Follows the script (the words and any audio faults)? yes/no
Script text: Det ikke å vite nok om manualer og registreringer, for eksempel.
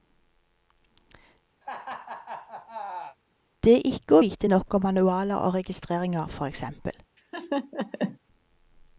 no